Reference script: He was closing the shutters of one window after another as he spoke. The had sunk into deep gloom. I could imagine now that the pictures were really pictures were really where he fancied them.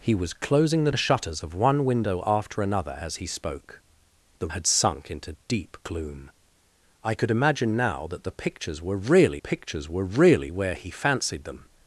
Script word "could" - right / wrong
right